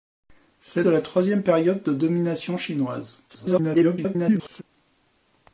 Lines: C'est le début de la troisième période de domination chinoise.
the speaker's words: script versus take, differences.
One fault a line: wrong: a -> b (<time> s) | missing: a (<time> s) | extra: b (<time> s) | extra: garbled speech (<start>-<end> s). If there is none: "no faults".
missing: le début (0.8 s)
extra: garbled speech (3.3-4.6 s)